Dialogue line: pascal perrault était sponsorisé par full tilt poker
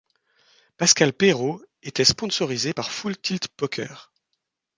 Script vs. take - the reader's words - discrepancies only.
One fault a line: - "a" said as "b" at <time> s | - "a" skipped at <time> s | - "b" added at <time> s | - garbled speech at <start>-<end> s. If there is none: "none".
none